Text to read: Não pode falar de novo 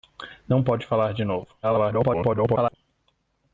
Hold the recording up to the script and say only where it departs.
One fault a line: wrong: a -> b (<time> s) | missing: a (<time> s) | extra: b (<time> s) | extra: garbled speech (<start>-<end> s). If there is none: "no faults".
extra: garbled speech (1.6-2.8 s)